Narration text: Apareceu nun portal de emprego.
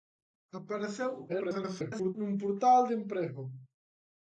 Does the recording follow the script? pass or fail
fail